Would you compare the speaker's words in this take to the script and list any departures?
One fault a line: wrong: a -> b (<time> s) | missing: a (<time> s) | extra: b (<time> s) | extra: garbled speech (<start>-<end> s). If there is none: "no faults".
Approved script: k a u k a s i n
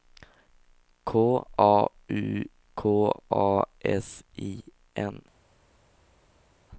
no faults